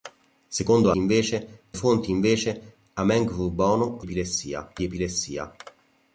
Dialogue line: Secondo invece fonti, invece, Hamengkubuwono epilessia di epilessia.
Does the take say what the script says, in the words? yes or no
yes